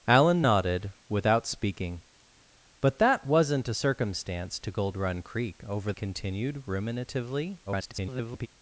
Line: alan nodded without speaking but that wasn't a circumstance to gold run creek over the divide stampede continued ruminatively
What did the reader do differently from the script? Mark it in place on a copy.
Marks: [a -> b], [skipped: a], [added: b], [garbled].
alan nodded without speaking but that wasn't a circumstance to gold run creek over [skipped: the divide stampede] continued ruminatively [garbled]